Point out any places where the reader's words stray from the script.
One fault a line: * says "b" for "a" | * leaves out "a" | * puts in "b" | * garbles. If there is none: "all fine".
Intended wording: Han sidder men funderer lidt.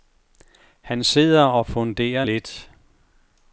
* says "og" for "men"